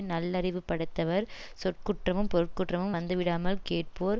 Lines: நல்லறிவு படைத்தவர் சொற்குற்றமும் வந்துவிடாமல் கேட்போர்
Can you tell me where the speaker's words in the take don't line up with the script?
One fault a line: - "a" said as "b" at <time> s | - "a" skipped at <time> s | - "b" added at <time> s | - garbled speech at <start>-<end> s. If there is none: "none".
- "பொருட்குற்றமும்" added at 2.3 s